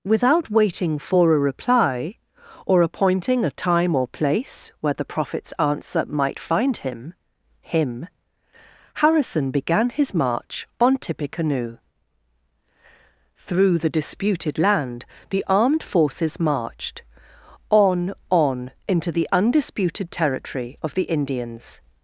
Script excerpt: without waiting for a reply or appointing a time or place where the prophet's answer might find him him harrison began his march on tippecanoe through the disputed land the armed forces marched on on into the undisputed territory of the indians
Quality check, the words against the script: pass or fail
pass